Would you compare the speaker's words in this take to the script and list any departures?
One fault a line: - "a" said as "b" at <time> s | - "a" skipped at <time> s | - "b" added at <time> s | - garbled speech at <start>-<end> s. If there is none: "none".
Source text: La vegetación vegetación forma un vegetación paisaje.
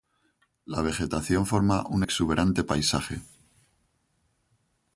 - "vegetación" skipped at 1.4 s
- "vegetación" said as "exuberante" at 2.0 s